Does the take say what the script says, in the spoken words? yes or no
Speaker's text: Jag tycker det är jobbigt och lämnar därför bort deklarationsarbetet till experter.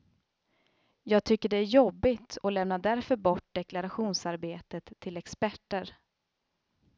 yes